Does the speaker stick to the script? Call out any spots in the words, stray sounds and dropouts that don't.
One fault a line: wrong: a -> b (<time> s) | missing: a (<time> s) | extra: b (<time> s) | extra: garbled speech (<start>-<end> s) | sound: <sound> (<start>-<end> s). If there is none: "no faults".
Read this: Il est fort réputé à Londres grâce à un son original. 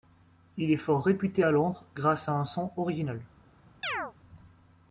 sound: chirp (3.8-4.1 s)